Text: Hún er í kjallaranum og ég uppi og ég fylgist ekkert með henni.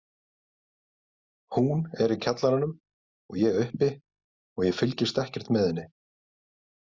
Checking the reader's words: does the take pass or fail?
pass